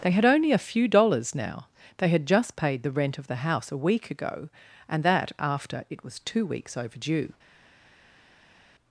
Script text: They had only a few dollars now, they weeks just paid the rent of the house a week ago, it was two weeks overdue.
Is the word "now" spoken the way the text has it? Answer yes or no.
yes